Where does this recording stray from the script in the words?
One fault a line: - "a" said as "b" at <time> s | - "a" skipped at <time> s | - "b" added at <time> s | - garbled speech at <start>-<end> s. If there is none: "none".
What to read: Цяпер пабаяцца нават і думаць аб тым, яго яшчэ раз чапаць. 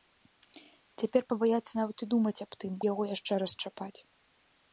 none